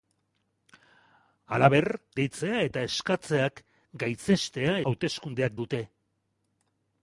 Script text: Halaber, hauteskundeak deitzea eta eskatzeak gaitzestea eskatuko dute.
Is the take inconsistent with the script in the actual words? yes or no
yes